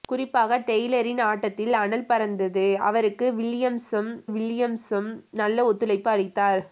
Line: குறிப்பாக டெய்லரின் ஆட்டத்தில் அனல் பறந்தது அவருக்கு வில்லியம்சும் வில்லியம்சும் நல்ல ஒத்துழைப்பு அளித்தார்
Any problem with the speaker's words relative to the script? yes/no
no